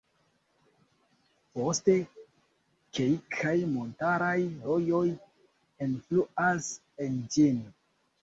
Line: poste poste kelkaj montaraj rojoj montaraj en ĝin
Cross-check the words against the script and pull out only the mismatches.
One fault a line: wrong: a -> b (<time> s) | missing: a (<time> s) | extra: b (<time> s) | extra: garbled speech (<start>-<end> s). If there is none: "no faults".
missing: poste (1.9 s)
wrong: montaraj -> enfluas (5.9 s)